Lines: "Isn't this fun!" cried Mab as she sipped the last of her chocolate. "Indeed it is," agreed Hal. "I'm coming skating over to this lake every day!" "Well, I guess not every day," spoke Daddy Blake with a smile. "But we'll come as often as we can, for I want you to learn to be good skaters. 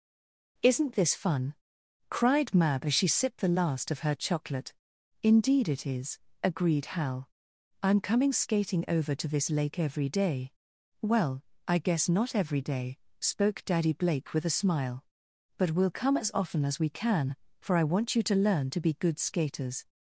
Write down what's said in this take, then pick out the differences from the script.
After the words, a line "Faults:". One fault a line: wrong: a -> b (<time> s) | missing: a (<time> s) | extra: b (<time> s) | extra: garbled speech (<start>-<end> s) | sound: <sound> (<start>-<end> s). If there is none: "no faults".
"Isn't this fun!" cried Mab as she sipped the last of her chocolate. "Indeed it is," agreed Hal. "I'm coming skating over to this lake every day!" "Well, I guess not every day," spoke Daddy Blake with a smile. "But we'll come as often as we can, for I want you to learn to be good skaters.
Faults:
no faults